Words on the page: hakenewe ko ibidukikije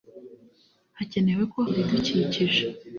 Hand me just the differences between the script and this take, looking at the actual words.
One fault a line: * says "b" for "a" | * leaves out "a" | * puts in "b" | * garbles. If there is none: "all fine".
all fine